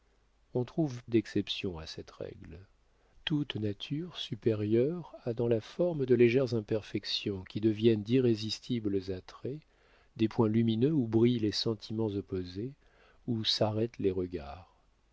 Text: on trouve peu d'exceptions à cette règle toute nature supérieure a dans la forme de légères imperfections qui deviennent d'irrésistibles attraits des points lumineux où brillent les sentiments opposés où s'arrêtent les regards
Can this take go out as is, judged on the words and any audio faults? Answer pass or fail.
fail